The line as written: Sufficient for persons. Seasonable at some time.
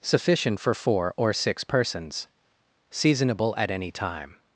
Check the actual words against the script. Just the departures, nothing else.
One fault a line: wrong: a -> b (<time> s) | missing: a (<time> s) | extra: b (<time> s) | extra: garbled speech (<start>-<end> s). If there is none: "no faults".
extra: four or six (0.7 s)
wrong: some -> any (3.7 s)